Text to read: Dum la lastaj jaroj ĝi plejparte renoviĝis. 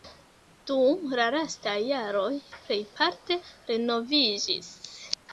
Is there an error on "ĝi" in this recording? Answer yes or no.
yes